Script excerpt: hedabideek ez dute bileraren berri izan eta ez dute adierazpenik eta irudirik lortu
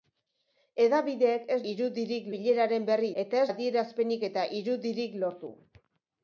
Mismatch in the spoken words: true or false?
true